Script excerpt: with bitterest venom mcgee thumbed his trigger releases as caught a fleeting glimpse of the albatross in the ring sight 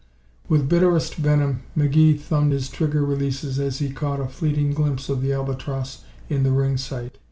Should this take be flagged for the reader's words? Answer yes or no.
yes